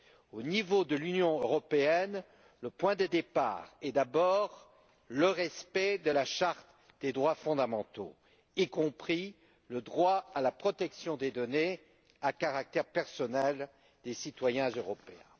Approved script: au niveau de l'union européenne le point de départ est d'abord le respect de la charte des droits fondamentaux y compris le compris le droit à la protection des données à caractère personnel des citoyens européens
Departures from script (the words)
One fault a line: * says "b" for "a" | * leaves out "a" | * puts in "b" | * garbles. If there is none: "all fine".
* leaves out "compris le"